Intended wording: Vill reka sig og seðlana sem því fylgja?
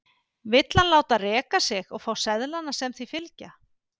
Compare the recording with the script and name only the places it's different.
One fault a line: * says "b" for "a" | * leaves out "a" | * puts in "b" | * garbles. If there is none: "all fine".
* puts in "hann láta"
* puts in "fá"